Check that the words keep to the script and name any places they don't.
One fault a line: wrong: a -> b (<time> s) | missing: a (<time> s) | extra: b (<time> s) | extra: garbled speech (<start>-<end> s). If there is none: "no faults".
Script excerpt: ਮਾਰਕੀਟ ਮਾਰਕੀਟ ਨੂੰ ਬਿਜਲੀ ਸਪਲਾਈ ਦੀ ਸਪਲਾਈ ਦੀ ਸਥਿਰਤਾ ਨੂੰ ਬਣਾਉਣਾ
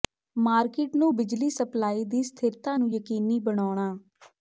missing: ਮਾਰਕੀਟ (0.9 s)
missing: ਸਪਲਾਈ ਦੀ (2.2 s)
extra: ਯਕੀਨੀ (2.9 s)